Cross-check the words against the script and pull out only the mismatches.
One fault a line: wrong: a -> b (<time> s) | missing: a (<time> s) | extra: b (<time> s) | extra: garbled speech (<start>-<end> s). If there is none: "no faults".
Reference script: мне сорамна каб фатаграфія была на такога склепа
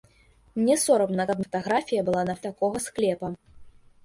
no faults